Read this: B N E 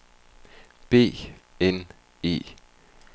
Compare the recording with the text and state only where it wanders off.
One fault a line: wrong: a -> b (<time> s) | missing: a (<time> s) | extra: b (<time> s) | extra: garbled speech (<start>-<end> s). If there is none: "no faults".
no faults